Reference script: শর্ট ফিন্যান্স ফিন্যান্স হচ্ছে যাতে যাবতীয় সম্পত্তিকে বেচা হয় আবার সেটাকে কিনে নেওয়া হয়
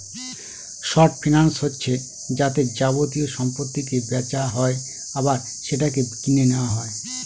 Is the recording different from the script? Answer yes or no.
yes